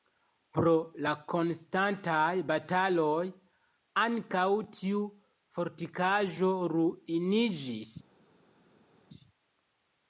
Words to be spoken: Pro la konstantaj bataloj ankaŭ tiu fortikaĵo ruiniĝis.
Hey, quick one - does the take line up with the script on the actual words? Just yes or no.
yes